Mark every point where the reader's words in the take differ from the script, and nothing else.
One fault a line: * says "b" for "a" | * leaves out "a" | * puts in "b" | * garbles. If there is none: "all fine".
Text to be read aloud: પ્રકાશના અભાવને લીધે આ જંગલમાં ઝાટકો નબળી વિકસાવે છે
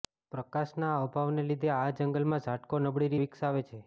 all fine